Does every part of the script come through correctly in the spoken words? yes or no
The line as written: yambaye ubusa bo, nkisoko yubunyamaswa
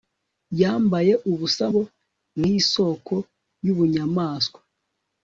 yes